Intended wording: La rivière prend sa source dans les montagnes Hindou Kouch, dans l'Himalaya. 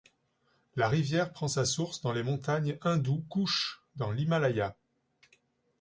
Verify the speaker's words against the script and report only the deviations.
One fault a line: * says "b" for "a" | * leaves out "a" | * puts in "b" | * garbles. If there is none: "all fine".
all fine